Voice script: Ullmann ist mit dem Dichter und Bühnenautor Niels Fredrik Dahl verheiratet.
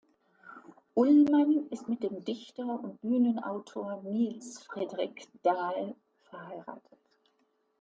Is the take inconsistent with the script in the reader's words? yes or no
no